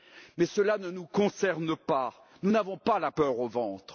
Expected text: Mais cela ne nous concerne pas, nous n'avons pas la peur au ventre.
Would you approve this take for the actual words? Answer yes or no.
yes